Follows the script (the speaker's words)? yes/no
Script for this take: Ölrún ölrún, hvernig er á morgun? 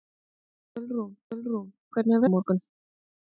yes